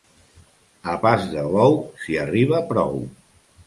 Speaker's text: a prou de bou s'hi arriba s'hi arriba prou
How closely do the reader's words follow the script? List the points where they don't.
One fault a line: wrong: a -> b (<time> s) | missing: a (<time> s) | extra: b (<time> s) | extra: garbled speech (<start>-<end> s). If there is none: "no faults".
wrong: prou -> pas (1.0 s)
missing: s'hi arriba (2.7 s)